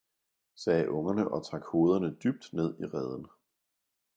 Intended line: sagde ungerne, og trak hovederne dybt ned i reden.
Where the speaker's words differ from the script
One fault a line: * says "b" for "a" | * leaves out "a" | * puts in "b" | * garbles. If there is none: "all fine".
all fine